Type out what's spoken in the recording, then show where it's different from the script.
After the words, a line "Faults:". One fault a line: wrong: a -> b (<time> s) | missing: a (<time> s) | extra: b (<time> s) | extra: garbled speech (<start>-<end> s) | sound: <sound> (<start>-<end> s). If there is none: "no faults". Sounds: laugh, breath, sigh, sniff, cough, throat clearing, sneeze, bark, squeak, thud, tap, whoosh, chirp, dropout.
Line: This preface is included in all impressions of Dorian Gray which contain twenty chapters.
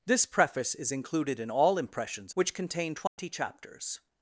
This preface is included in all impressions which contain twenty chapters.
Faults:
missing: of Dorian Gray (2.3 s)
sound: dropout (3.1-3.2 s)